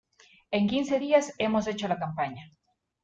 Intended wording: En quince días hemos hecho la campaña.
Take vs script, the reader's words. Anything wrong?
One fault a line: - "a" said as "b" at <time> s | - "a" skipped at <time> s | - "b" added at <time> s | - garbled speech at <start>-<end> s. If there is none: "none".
none